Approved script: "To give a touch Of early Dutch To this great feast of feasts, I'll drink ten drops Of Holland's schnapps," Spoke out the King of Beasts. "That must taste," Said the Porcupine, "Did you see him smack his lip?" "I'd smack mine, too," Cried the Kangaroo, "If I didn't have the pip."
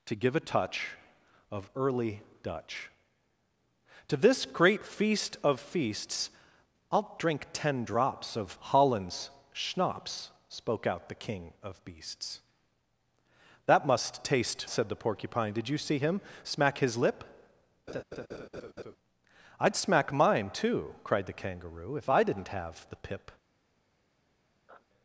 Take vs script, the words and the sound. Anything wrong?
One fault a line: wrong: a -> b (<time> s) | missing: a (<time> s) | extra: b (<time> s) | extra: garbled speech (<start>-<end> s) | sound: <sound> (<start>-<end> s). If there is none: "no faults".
sound: laugh (17.9-19.0 s)
sound: sniff (24.7-24.9 s)